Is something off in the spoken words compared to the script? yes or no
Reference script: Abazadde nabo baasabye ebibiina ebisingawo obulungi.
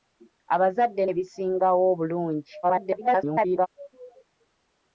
yes